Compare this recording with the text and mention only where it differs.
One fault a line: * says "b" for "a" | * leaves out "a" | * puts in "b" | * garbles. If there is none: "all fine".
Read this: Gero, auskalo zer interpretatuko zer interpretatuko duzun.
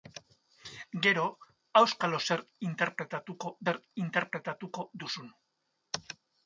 all fine